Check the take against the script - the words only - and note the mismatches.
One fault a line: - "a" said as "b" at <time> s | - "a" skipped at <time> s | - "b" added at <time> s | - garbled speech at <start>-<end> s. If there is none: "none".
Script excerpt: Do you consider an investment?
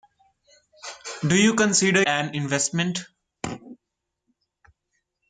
none